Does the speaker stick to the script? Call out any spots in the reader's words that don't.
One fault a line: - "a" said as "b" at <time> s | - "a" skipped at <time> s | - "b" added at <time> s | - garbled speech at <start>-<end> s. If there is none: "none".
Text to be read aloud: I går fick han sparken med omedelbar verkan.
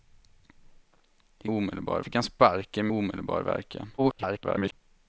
- "går" said as "omedelbar" at 1.5 s
- "med" skipped at 2.9 s
- garbled speech at 4.0-4.7 s